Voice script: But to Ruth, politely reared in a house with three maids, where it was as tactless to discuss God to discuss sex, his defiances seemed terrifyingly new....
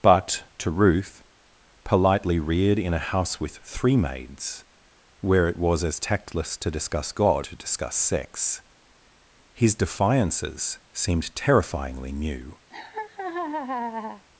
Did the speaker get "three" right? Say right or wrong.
right